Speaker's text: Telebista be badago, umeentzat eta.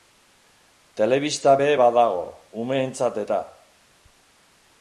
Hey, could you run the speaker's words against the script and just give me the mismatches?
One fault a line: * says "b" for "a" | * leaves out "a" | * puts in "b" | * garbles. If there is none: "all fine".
all fine